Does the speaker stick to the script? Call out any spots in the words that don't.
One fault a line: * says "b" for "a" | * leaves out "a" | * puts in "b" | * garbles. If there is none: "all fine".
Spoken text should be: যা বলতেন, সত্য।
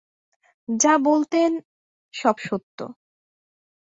* puts in "সব"